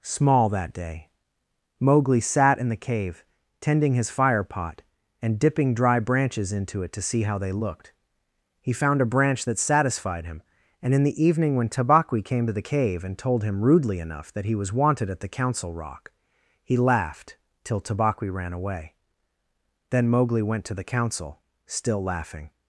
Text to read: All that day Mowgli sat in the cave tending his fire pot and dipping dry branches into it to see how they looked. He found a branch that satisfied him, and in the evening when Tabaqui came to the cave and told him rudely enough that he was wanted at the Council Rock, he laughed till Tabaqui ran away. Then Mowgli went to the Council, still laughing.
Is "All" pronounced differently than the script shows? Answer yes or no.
yes